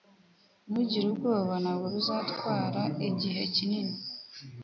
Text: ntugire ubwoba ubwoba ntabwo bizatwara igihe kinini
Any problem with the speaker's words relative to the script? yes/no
yes